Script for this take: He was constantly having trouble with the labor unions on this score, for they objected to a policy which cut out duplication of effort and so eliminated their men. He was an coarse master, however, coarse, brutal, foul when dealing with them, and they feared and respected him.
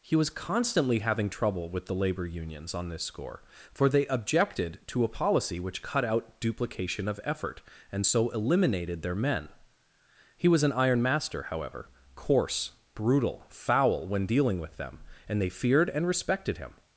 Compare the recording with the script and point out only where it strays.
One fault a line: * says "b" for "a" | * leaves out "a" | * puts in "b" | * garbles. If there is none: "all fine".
* says "iron" for "coarse"